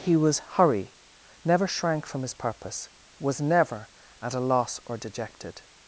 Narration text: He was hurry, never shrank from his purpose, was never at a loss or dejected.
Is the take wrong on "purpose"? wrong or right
right